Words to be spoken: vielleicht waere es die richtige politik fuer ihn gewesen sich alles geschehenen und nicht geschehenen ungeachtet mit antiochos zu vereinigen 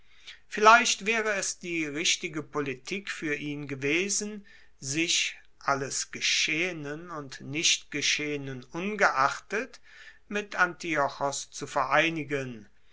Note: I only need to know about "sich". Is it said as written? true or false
true